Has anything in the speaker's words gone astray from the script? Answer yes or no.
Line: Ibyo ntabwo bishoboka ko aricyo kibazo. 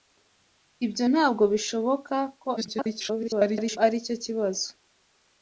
yes